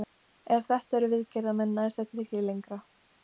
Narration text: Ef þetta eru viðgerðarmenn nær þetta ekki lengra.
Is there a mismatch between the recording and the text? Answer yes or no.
no